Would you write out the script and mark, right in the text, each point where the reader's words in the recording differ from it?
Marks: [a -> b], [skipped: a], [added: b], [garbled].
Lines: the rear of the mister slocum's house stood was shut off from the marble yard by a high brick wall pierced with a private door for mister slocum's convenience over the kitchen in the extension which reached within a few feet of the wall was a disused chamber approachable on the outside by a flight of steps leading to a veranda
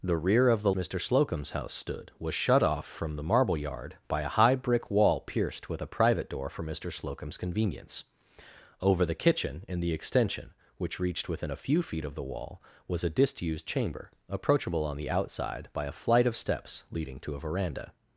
the rear of the mister slocum's house stood was shut off from the marble yard by a high brick wall pierced with a private door for mister slocum's convenience over the kitchen in the extension which reached within a few feet of the wall was a disused chamber approachable on the outside by a flight of steps leading to a veranda